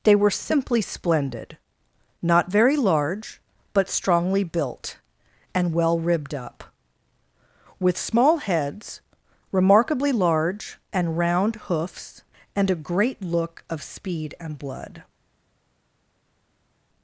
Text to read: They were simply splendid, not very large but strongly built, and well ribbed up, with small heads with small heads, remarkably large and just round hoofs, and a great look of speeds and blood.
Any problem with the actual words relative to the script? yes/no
yes